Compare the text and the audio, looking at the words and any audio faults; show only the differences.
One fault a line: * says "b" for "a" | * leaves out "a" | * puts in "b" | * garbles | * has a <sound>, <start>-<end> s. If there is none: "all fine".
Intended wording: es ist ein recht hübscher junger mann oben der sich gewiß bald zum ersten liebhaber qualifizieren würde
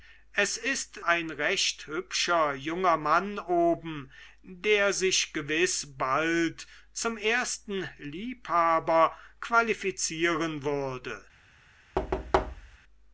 * has a thud, 12.0-12.8 s